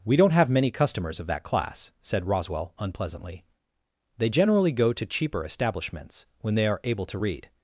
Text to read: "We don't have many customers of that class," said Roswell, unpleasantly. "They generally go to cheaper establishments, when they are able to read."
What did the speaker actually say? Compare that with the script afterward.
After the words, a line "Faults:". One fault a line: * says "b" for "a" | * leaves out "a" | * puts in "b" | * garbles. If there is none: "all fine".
"We don't have many customers of that class," said Roswell, unpleasantly. "They generally go to cheaper establishments, when they are able to read."
Faults:
all fine